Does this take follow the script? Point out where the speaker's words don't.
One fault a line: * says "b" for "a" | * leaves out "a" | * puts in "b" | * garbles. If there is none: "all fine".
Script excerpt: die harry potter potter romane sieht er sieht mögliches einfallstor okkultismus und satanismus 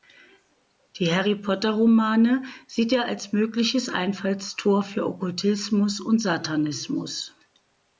* leaves out "potter"
* says "als" for "sieht"
* puts in "für"